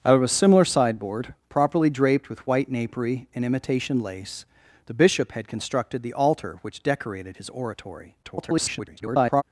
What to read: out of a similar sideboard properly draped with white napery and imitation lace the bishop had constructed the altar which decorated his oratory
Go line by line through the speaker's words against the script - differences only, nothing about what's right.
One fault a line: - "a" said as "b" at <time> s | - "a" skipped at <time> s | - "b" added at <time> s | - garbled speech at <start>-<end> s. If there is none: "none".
- garbled speech at 8.2-9.4 s